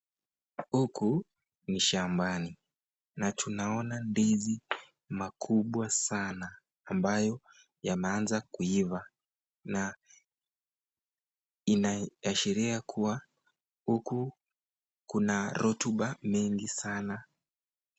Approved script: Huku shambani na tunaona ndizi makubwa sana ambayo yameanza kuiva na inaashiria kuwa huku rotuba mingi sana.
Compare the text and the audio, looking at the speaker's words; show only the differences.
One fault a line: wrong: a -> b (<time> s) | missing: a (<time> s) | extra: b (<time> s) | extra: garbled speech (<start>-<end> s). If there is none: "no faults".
extra: ni (1.7 s)
extra: kuna (15.1 s)